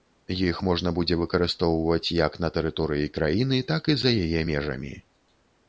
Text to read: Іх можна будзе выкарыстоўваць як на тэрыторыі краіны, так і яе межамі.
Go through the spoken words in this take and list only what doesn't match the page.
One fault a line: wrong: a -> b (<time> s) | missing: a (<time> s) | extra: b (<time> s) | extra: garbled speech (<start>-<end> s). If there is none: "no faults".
extra: за (4.1 s)